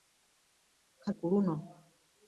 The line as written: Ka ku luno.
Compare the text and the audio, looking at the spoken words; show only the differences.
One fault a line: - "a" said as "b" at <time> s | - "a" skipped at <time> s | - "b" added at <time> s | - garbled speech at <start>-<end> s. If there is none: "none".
none